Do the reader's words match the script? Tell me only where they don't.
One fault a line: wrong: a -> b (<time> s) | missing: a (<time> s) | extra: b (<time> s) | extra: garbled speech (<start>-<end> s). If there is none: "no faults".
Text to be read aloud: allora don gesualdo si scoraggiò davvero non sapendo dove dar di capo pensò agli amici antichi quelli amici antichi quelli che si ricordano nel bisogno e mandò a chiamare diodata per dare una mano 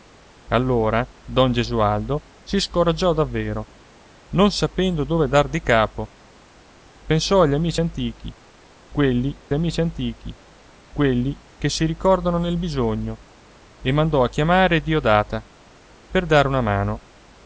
no faults